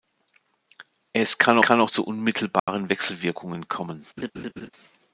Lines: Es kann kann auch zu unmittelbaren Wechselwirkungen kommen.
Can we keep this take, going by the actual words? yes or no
yes